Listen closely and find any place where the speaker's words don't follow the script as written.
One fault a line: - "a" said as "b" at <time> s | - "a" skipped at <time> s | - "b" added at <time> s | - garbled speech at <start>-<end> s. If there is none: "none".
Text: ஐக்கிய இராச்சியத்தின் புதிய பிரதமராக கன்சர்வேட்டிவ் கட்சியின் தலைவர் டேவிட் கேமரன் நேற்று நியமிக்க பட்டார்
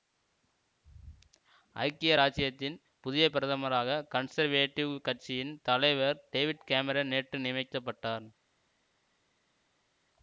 none